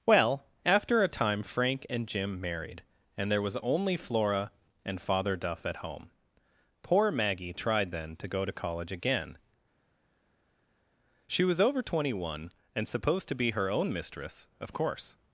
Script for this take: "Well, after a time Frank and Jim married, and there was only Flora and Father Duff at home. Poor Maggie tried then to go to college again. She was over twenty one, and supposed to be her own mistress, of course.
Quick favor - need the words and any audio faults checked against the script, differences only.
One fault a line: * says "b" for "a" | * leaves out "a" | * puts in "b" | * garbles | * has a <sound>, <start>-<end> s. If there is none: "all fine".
all fine